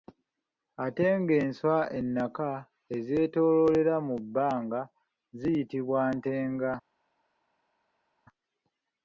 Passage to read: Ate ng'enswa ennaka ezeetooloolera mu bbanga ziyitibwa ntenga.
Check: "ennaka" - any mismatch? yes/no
no